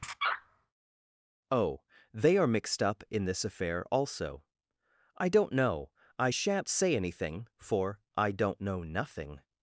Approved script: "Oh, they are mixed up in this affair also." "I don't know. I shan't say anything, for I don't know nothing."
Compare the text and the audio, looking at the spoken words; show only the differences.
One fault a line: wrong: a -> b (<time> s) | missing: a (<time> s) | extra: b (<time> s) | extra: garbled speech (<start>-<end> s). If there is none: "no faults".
no faults